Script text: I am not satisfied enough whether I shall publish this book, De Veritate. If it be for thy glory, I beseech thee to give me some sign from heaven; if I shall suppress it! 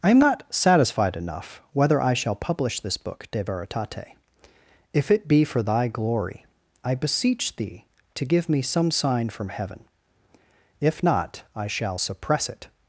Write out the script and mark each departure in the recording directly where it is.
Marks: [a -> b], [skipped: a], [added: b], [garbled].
I am not satisfied enough whether I shall publish this book, De Veritate. If it be for thy glory, I beseech thee to give me some sign from heaven; if [added: not] I shall suppress it!